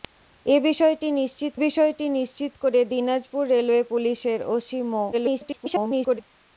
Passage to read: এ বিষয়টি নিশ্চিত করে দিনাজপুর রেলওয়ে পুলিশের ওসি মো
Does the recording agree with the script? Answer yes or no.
no